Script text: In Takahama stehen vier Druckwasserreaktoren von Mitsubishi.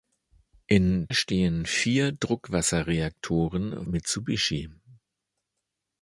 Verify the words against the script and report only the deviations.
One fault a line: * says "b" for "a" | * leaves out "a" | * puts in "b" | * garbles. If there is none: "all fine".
* leaves out "Takahama"
* leaves out "von"